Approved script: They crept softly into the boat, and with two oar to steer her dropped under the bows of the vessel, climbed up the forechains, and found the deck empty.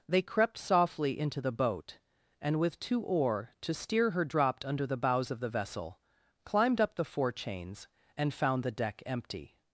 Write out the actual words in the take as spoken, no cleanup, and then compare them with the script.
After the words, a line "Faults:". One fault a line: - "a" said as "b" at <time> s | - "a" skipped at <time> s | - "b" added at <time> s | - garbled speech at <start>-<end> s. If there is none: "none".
They crept softly into the boat, and with two oar to steer her dropped under the bows of the vessel, climbed up the forechains, and found the deck empty.
Faults:
none